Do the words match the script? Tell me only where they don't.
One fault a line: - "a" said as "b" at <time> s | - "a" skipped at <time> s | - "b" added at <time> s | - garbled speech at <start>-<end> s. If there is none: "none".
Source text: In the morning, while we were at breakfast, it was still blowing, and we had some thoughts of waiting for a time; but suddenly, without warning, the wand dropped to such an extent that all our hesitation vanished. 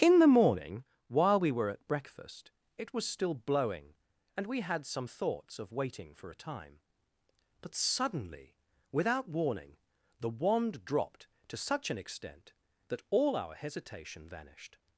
none